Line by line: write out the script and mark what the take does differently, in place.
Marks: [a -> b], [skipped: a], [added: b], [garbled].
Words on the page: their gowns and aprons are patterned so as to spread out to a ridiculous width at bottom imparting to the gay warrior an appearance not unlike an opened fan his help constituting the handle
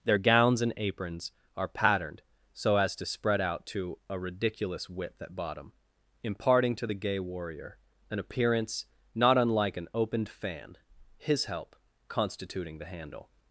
their gowns and aprons are patterned so as to spread out to a ridiculous width at bottom imparting to the gay warrior an appearance not unlike an opened fan his help constituting the handle